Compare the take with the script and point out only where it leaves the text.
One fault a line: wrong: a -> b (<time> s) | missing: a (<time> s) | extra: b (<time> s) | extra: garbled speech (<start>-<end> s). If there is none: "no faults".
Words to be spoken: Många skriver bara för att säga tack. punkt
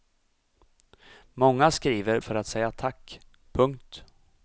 missing: bara (2.2 s)